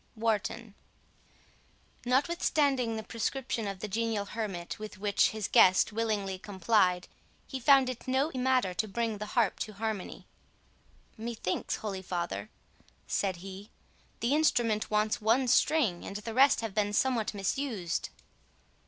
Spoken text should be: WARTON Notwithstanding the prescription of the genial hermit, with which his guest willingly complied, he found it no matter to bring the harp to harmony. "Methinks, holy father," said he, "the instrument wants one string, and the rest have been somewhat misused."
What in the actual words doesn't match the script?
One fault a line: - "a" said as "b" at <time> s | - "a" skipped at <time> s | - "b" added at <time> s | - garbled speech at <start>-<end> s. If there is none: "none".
none